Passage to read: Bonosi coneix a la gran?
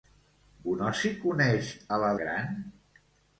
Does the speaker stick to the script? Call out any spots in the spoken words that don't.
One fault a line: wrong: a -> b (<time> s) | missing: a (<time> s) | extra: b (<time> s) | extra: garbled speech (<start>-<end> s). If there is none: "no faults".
no faults